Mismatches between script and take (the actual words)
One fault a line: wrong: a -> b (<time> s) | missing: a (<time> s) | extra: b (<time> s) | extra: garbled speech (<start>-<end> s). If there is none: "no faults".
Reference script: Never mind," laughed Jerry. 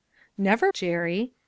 missing: mind laughed (0.7 s)